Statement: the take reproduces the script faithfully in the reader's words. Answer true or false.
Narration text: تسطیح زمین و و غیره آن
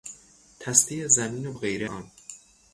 true